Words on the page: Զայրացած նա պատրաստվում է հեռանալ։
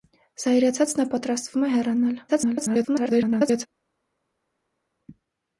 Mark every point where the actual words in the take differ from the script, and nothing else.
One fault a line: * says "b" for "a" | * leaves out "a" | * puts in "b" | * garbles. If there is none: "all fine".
* garbles